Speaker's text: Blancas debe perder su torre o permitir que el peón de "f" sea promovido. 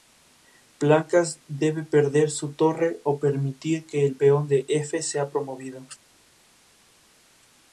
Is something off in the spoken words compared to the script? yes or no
no